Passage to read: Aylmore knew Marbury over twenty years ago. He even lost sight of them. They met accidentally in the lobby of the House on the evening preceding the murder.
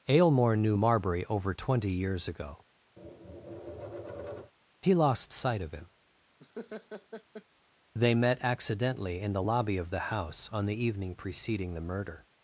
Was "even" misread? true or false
true